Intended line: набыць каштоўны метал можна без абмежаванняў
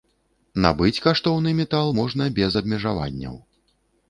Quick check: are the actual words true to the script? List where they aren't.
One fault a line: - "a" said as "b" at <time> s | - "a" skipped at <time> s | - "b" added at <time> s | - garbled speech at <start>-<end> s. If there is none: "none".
none